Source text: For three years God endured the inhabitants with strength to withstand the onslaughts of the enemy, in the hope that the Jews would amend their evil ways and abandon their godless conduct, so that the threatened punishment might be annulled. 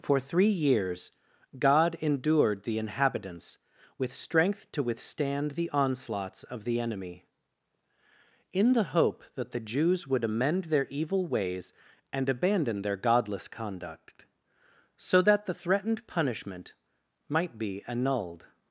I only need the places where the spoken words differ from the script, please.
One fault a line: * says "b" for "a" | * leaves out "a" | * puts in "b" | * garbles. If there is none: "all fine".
all fine